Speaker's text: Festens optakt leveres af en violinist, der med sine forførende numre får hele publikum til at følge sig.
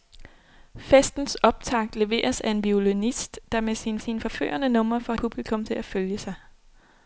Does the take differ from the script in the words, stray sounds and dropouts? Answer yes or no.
yes